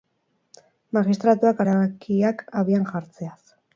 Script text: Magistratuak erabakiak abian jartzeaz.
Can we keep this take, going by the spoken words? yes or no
yes